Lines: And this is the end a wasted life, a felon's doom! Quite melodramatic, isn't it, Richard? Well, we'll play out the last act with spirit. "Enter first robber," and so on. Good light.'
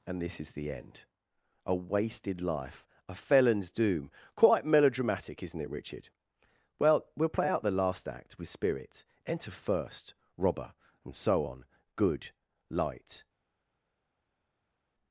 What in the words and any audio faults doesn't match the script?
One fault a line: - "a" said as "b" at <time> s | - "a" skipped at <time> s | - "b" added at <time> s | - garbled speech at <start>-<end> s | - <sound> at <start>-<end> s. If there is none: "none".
none